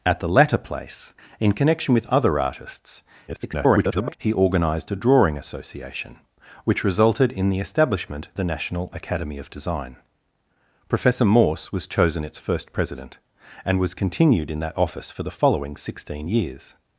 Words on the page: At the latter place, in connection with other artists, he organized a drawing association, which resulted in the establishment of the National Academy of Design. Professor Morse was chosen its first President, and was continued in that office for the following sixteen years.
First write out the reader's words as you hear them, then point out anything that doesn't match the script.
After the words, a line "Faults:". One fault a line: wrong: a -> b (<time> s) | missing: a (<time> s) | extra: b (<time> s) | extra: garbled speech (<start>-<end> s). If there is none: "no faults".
At the latter place, in connection with other artists, [garbled] he organized a drawing association, which resulted in the establishment the National Academy of Design. Professor Morse was chosen its first President, and was continued in that office for the following sixteen years.
Faults:
extra: garbled speech (3.3-4.2 s)
missing: of (8.3 s)